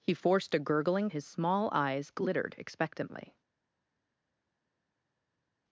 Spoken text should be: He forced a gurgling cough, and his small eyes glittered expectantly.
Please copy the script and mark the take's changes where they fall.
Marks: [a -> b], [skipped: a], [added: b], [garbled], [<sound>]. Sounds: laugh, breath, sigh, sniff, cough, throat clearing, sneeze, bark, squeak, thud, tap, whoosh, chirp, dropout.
He forced a gurgling [skipped: cough, and] his small eyes glittered expectantly.